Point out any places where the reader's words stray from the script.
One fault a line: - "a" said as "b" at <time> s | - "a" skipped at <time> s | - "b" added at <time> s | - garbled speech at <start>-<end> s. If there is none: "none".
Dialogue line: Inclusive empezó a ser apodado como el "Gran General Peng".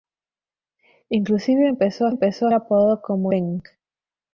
- "ser" said as "empezó" at 2.1 s
- "el Gran General" skipped at 3.3 s